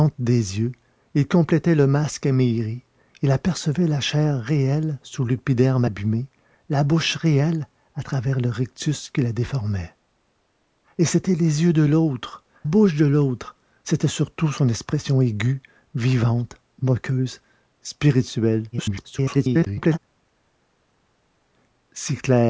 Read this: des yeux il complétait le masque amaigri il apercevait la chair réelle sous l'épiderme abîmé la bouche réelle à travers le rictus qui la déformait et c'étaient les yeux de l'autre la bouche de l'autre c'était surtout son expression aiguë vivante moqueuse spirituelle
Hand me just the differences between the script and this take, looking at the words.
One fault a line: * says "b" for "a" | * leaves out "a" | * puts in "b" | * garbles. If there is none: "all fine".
* leaves out "la"
* garbles